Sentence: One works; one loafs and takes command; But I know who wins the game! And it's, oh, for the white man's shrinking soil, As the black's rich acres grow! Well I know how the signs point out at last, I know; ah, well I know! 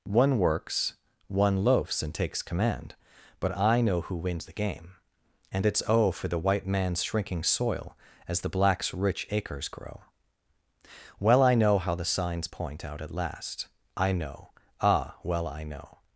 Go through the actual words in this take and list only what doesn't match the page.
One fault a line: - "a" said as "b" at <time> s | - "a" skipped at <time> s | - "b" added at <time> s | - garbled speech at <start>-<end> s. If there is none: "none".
none